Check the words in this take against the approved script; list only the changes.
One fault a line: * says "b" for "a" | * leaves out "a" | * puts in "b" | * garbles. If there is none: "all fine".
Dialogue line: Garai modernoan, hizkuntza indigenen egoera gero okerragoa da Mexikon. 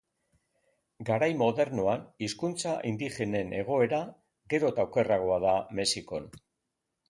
* puts in "eta"